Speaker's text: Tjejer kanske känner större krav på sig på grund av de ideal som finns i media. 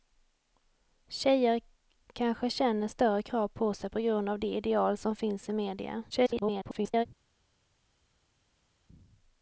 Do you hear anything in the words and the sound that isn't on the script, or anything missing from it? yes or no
yes